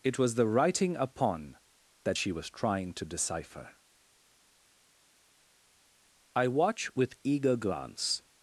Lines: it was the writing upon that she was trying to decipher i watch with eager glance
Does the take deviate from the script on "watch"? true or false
false